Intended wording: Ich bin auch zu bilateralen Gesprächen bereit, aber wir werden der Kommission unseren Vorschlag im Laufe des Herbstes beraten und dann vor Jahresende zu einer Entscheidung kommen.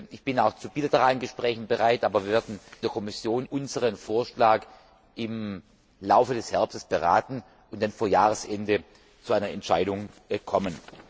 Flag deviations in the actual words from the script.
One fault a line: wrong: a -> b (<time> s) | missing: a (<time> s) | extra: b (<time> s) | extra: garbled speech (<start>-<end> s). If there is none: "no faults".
no faults